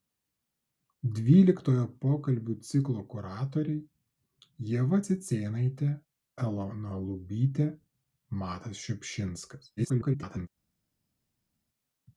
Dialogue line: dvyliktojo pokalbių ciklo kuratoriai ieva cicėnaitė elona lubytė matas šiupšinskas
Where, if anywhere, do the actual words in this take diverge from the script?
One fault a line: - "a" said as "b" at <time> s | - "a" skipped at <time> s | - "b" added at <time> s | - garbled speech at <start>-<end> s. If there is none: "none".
- garbled speech at 9.8-10.5 s